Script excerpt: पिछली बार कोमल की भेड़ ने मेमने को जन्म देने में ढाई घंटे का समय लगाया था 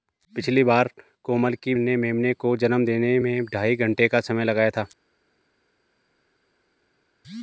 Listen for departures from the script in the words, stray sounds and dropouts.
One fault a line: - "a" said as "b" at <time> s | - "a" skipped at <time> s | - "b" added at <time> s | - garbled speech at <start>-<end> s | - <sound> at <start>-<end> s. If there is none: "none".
- "भेड़" skipped at 1.8 s